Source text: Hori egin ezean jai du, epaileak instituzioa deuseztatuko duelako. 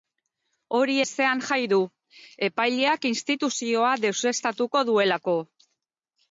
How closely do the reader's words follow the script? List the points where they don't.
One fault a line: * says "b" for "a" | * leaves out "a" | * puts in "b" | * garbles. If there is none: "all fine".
* leaves out "egin"